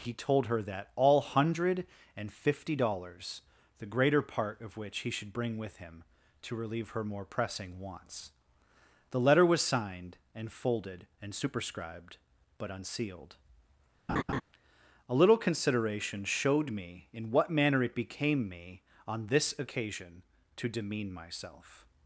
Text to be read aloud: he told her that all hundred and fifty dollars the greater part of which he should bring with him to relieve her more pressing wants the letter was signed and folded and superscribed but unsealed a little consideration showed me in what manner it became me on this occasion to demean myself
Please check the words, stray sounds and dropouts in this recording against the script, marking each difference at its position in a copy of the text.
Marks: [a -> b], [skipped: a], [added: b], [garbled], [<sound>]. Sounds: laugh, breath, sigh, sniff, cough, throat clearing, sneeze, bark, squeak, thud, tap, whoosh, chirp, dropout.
he told her that all hundred and fifty dollars the greater part of which he should bring with him to relieve her more pressing wants the letter was signed and folded and superscribed but unsealed [laugh] a little consideration showed me in what manner it became me on this occasion to demean myself